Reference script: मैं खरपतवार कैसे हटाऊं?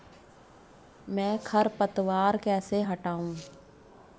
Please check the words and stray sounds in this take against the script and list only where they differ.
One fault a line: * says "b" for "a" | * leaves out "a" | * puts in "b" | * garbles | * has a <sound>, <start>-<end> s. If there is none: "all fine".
all fine